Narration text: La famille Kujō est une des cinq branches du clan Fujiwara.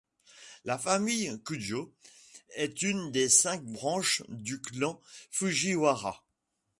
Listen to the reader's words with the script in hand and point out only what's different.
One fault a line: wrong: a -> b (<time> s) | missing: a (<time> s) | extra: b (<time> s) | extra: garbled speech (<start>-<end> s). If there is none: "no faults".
no faults